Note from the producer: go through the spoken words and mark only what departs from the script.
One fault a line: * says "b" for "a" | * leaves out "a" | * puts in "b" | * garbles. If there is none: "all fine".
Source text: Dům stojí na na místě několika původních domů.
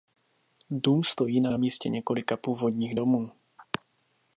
all fine